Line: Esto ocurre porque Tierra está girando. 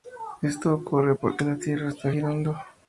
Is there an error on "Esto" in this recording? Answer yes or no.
no